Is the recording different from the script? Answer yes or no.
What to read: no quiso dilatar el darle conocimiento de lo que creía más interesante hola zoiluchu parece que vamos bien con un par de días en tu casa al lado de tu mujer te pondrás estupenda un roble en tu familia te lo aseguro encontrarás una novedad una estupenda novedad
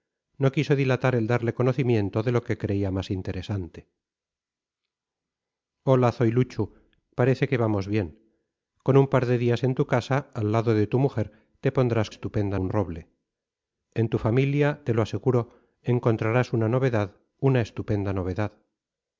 no